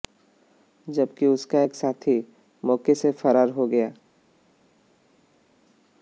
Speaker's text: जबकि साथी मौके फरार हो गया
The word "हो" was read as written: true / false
true